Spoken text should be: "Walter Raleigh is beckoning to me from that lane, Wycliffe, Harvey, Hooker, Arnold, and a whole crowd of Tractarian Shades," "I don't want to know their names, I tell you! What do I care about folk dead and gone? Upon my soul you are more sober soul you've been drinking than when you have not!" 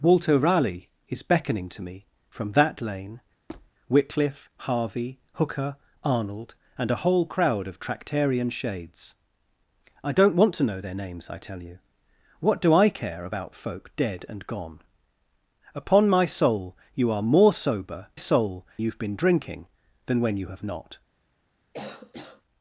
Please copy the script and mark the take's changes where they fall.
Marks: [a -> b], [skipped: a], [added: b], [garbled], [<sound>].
"Walter Raleigh is beckoning to me from that lane, [squeak] Wycliffe, Harvey, Hooker, Arnold, and a whole crowd of Tractarian Shades," "I don't want to know their names, I tell you! What do I care about folk dead and gone? Upon my soul you are more sober soul you've been drinking than when you have not!" [cough]